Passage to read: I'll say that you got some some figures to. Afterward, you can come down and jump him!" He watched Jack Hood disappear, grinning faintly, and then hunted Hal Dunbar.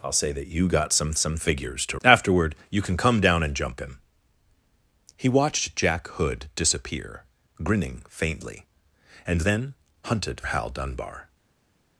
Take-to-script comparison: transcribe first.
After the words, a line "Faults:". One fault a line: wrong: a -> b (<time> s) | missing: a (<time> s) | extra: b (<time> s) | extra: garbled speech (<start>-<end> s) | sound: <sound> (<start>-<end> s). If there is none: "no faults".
I'll say that you got some some figures to. Afterward, you can come down and jump him!" He watched Jack Hood disappear, grinning faintly, and then hunted Hal Dunbar.
Faults:
no faults